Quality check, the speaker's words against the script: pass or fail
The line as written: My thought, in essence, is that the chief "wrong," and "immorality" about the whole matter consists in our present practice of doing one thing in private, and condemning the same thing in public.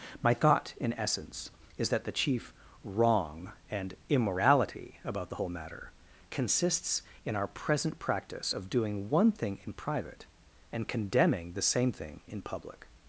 pass